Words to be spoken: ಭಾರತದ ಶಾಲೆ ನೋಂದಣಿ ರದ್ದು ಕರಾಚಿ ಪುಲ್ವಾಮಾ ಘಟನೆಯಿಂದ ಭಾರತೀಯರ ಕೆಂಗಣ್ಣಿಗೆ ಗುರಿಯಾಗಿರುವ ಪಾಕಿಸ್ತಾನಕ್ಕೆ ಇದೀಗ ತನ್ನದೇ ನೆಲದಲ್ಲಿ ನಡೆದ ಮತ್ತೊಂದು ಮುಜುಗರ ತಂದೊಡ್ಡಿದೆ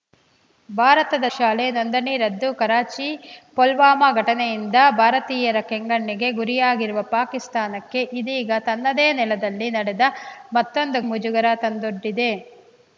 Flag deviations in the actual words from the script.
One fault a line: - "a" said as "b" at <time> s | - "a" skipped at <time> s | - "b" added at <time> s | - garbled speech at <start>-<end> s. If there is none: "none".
none